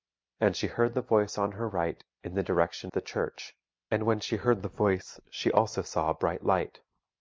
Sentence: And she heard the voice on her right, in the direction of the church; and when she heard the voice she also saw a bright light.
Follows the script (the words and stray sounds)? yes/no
no